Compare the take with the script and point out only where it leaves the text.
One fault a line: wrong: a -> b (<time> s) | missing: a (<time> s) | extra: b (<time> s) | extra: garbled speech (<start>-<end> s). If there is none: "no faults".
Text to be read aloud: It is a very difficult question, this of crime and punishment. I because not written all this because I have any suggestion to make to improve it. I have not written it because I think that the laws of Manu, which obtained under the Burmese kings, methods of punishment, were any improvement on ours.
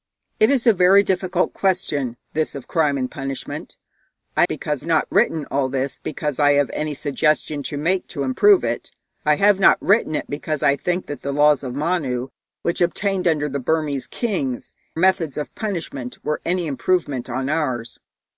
no faults